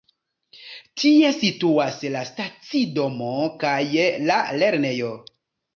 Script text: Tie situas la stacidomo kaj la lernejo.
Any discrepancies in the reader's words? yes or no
no